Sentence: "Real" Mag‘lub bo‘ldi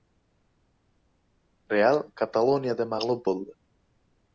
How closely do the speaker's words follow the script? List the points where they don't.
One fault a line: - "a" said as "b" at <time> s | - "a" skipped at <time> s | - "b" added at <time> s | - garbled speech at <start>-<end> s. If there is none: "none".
- "Kataloniyada" added at 2.2 s